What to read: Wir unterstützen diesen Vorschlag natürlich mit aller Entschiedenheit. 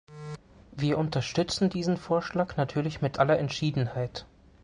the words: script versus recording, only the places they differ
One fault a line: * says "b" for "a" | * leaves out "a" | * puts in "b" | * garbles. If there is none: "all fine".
all fine